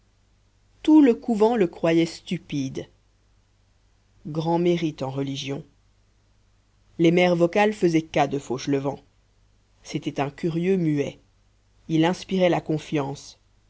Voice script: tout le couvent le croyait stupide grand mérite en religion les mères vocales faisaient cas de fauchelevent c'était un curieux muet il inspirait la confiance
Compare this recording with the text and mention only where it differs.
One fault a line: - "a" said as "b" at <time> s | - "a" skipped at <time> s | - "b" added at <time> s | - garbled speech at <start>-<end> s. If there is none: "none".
none